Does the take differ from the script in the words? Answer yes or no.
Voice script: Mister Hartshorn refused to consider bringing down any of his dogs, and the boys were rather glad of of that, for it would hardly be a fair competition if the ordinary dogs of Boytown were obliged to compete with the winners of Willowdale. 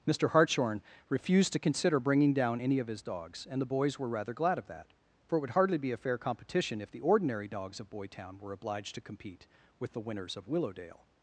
yes